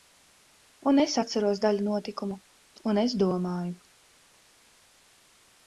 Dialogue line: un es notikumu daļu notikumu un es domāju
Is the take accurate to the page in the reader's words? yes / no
no